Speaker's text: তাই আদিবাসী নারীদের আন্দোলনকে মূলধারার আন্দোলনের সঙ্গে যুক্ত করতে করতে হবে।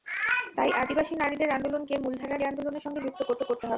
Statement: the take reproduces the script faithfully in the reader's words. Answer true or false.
true